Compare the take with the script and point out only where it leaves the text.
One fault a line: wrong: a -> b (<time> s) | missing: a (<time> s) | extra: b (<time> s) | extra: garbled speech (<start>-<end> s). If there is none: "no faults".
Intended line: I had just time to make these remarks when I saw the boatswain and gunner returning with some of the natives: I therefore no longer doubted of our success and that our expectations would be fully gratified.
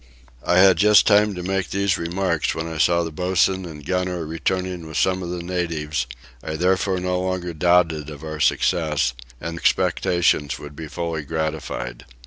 missing: that our (9.6 s)